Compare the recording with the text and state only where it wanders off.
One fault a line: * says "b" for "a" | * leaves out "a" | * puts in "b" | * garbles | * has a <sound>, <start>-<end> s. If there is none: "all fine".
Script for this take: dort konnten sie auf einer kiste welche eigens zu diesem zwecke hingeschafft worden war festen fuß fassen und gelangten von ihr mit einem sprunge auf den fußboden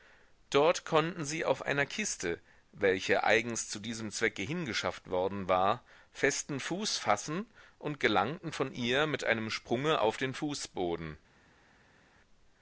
all fine